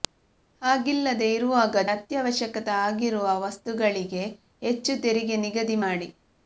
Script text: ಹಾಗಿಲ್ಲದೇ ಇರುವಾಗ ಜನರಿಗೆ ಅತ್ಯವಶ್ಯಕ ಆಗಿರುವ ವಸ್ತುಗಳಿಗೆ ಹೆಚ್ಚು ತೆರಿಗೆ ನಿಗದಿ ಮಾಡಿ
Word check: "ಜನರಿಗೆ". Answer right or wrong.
wrong